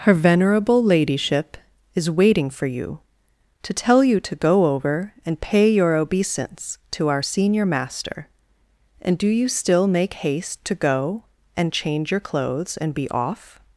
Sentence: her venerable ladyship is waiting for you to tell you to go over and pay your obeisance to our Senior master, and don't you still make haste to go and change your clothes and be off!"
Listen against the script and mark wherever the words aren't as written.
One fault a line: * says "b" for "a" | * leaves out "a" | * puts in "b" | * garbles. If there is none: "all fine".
* says "do" for "don't"